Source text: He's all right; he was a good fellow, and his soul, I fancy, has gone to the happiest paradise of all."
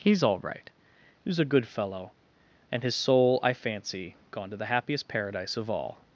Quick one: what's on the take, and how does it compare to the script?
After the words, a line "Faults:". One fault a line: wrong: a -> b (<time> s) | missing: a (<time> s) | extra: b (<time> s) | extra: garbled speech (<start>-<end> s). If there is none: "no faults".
He's all right; he was a good fellow, and his soul, I fancy, gone to the happiest paradise of all."
Faults:
missing: has (4.2 s)